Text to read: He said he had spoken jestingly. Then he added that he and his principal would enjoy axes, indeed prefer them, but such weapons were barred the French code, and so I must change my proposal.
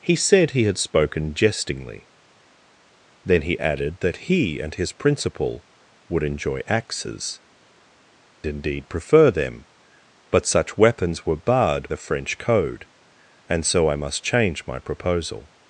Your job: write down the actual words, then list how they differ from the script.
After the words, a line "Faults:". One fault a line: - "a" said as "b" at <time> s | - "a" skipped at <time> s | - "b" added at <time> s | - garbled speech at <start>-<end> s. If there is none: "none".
He said he had spoken jestingly. Then he added that he and his principal would enjoy axes, indeed prefer them, but such weapons were barred the French code, and so I must change my proposal.
Faults:
none